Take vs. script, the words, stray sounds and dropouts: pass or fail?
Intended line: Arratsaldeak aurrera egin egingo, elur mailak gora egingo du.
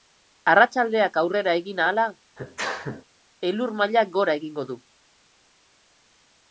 fail